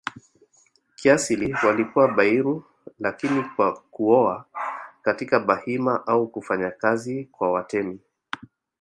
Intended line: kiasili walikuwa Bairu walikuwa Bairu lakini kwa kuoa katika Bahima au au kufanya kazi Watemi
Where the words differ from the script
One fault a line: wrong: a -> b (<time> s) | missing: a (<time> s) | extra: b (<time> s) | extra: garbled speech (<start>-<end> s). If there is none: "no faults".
missing: walikuwa Bairu (2.6 s)
missing: au (6.3 s)
extra: kwa (7.2 s)